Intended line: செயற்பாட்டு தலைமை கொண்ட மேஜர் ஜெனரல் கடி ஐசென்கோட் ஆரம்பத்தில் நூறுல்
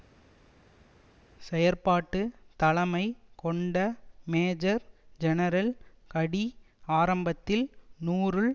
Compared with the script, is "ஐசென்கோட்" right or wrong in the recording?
wrong